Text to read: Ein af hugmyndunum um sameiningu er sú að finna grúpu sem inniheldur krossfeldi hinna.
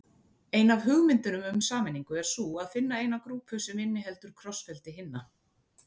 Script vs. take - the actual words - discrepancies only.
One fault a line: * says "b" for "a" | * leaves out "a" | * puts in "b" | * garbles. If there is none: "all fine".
* puts in "eina"